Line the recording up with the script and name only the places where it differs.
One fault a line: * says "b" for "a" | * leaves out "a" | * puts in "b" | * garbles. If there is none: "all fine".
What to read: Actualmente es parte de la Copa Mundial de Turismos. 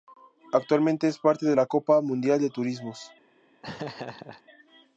all fine